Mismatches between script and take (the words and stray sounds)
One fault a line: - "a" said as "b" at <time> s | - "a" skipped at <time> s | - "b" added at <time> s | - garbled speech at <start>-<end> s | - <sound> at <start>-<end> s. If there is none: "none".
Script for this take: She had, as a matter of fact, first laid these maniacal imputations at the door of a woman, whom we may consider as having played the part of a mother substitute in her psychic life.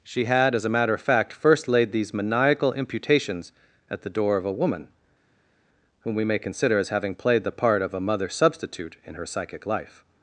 none